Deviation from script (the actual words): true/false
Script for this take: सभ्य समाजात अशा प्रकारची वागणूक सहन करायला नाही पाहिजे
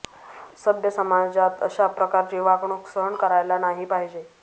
false